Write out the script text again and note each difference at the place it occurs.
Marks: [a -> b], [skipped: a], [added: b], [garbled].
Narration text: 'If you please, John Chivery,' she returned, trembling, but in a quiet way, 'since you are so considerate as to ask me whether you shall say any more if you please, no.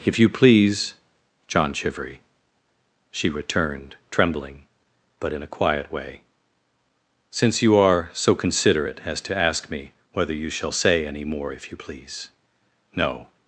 'If you please, John Chivery,' she returned, trembling, but in a quiet way, 'since you are so considerate as to ask me whether you shall say any more if you please, no.